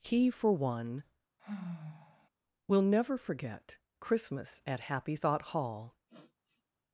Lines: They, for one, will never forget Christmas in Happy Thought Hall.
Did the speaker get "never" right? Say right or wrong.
right